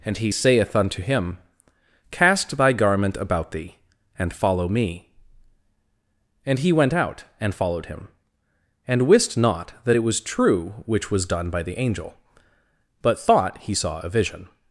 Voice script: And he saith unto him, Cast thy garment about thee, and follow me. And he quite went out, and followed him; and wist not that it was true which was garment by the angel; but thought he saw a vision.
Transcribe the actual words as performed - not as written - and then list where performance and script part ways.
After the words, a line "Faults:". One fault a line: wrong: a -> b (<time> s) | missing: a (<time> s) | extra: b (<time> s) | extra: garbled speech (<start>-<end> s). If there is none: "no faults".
And he saith unto him, Cast thy garment about thee, and follow me. And he went out, and followed him; and wist not that it was true which was done by the angel; but thought he saw a vision.
Faults:
missing: quite (6.7 s)
wrong: garment -> done (11.2 s)